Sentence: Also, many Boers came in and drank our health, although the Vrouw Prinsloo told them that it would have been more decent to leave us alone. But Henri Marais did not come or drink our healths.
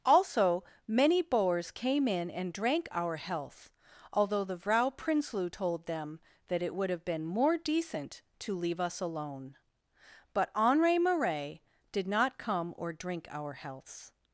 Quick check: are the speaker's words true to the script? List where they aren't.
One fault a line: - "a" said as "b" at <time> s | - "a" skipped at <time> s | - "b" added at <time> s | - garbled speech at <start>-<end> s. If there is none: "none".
none